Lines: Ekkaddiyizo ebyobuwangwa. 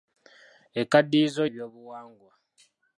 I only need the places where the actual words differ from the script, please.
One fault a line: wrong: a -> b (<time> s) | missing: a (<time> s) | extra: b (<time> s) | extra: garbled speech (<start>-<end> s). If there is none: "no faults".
no faults